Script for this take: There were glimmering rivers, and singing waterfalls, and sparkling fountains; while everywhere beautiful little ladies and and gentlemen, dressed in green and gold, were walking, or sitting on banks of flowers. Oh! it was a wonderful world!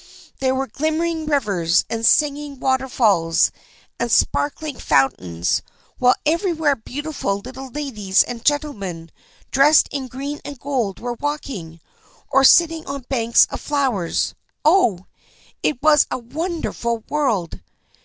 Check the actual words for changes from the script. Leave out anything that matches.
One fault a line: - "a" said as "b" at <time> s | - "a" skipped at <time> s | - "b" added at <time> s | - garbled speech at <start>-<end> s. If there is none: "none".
- "and" skipped at 8.4 s